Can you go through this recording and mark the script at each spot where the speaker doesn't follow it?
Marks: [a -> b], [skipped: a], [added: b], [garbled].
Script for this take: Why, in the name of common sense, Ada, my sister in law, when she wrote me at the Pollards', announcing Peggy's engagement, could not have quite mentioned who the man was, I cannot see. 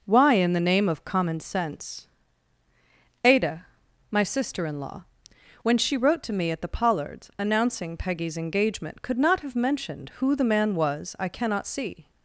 Why, in the name of common sense, Ada, my sister in law, when she wrote [added: to] me at the Pollards', announcing Peggy's engagement, could not have [skipped: quite] mentioned who the man was, I cannot see.